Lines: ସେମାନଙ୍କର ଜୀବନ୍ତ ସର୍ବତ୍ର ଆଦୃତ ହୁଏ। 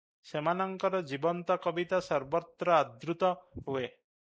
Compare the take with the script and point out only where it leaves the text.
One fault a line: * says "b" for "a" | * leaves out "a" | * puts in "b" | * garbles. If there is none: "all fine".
* puts in "କବିତା"